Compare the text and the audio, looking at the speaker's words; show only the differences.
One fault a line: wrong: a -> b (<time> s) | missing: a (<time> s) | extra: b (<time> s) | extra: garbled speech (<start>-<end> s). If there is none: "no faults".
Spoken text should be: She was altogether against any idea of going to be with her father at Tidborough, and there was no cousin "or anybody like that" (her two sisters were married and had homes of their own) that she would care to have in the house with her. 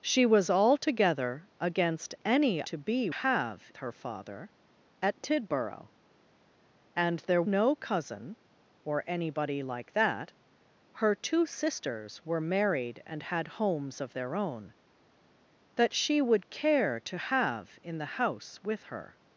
missing: idea of going (2.6 s)
wrong: with -> have (3.1 s)
missing: was (7.4 s)